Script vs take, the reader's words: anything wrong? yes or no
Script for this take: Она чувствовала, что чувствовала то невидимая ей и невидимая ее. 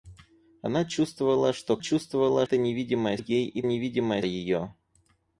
no